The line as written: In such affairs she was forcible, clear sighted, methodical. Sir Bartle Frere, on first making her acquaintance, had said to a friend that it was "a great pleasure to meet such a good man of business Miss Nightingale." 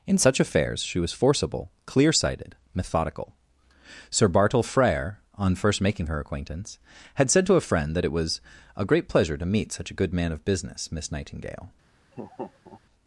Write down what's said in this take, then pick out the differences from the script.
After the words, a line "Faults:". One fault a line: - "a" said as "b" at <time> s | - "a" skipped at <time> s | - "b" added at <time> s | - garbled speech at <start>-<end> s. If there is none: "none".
In such affairs she was forcible, clear sighted, methodical. Sir Bartle Frere, on first making her acquaintance, had said to a friend that it was "a great pleasure to meet such a good man of business Miss Nightingale."
Faults:
none